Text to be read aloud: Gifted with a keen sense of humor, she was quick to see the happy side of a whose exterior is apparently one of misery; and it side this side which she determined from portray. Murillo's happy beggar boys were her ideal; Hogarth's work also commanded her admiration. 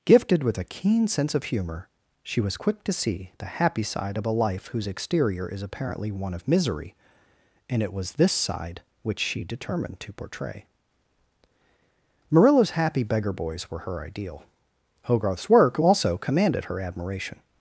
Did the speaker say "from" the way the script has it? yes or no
no